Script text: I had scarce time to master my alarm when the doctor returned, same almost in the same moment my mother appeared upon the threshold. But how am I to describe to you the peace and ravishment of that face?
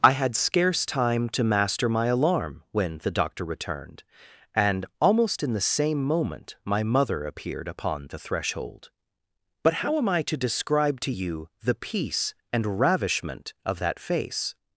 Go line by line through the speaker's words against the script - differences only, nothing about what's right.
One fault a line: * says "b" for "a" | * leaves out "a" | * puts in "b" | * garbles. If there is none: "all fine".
* says "and" for "same"